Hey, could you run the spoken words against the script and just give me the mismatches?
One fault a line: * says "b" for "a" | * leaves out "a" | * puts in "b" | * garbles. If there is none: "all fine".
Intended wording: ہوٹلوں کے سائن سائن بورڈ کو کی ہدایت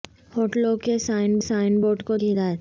all fine